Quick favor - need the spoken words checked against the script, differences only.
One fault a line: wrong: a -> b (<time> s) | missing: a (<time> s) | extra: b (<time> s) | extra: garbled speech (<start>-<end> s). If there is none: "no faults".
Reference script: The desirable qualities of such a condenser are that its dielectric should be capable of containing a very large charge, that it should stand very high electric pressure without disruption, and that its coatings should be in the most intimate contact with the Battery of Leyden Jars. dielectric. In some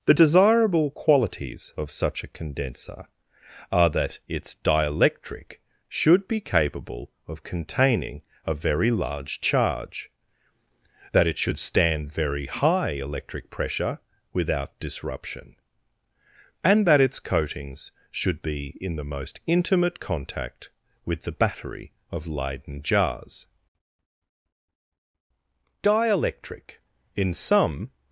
no faults